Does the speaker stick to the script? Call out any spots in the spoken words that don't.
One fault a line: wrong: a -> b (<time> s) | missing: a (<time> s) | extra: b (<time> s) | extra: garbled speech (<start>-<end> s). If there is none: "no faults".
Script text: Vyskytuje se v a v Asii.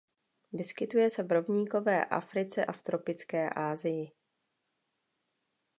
extra: rovníkové Africe (1.3 s)
extra: tropické (2.8 s)